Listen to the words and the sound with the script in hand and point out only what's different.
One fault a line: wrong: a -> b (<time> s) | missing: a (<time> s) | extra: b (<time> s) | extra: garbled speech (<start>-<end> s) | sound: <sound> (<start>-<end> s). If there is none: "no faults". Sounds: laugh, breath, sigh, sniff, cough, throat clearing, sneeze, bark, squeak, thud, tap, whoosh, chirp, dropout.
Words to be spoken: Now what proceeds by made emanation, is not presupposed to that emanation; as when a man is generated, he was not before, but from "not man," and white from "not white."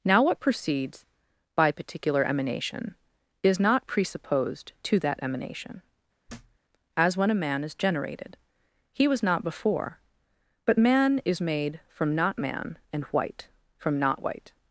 wrong: made -> particular (1.7 s)
sound: thud (6.3-6.6 s)
extra: man is made (10.8 s)